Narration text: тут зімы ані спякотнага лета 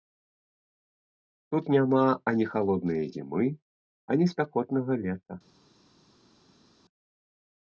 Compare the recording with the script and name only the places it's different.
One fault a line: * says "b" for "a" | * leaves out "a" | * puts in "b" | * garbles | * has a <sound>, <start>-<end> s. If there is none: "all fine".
* puts in "няма ані халоднае"